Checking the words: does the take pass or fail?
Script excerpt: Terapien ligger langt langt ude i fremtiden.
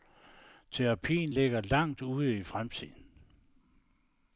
fail